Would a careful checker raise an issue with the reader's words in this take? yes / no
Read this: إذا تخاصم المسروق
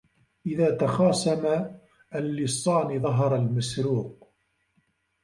yes